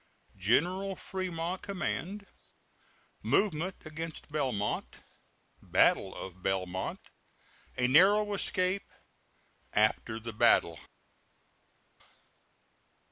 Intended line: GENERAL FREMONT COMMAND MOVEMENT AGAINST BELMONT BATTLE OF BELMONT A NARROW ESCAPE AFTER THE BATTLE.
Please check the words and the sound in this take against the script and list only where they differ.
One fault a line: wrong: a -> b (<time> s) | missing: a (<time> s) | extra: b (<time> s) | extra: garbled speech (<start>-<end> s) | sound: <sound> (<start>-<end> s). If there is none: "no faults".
no faults